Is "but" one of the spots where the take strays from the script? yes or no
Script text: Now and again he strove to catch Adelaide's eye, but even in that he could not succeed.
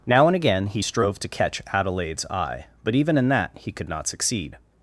no